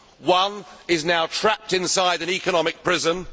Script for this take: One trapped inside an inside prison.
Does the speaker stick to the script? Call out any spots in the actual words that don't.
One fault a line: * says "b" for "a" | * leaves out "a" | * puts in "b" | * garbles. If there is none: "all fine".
* puts in "is now"
* says "economic" for "inside"